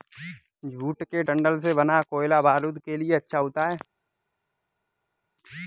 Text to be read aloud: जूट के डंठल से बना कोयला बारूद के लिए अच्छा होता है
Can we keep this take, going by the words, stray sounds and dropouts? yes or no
yes